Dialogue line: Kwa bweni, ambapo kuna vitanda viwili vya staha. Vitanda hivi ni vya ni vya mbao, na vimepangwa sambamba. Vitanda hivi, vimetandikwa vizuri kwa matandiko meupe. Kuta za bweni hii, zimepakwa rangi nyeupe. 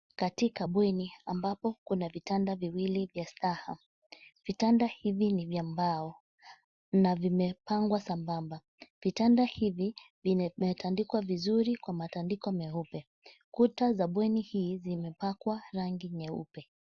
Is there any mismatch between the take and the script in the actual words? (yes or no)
yes